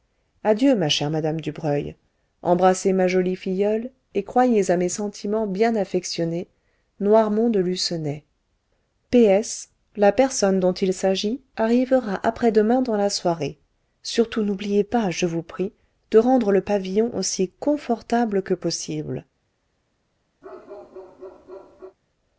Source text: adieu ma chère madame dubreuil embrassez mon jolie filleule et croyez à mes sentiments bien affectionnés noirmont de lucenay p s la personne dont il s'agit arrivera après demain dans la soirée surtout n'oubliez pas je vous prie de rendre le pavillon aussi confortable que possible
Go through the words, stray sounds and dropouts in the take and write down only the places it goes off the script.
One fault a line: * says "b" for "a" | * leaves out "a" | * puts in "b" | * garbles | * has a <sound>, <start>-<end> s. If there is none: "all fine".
* says "ma" for "mon"
* has a bark, 20.4-22.0 s